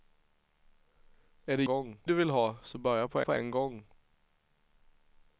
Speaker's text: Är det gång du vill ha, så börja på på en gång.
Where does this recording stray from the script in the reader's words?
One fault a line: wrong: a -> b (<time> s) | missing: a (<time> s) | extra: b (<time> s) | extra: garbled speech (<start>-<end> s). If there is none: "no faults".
no faults